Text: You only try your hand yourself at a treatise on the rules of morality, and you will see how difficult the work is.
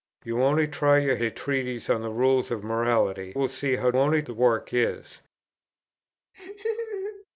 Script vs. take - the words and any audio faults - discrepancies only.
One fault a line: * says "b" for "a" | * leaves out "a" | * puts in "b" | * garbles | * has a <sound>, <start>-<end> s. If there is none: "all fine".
* leaves out "hand yourself at"
* leaves out "and you"
* says "only" for "difficult"
* has a laugh, 6.3-7.3 s